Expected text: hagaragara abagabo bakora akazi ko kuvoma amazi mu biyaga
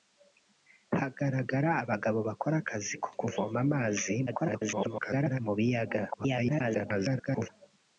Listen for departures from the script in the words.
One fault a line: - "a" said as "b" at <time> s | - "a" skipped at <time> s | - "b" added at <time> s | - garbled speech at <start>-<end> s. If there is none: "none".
- garbled speech at 4.3-5.4 s
- garbled speech at 6.1-7.5 s